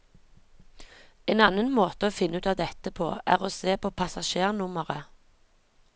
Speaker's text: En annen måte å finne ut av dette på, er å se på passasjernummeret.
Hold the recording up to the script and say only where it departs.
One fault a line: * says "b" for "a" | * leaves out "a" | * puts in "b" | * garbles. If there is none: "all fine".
all fine